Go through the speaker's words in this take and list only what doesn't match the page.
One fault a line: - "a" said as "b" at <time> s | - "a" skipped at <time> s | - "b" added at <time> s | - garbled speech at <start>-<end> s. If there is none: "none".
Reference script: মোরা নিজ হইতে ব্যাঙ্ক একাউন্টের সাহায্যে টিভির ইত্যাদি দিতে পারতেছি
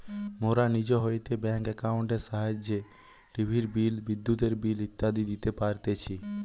- "বিল বিদ্যুতের বিল" added at 3.7 s